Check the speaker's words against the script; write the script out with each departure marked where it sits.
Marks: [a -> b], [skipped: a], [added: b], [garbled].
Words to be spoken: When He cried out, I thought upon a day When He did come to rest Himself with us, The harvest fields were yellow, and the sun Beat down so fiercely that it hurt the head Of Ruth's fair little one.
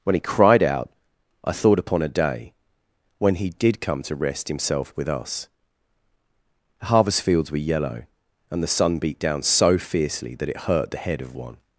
When He cried out, I thought upon a day When He did come to rest Himself with us, The harvest fields were yellow, and the sun Beat down so fiercely that it hurt the head Of [skipped: Ruth's fair little] one.